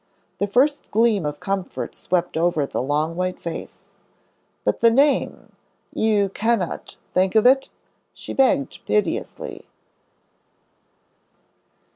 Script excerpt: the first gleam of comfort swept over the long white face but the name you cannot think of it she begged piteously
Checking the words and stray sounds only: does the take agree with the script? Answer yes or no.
yes